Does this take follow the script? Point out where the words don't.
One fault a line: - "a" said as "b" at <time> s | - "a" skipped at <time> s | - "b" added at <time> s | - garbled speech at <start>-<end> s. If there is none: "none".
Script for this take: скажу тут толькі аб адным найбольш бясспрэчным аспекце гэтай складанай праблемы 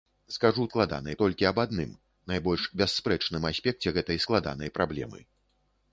- "тут" said as "складанай" at 0.7 s